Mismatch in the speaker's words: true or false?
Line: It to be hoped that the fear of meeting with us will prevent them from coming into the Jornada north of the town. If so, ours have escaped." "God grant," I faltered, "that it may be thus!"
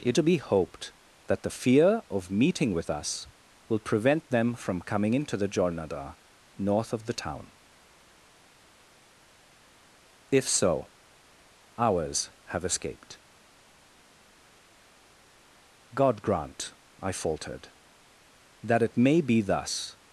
false